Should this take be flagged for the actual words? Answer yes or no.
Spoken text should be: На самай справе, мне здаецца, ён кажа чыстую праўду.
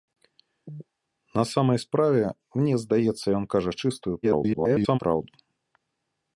yes